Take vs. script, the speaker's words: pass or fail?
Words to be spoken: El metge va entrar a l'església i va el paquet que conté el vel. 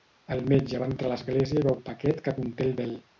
pass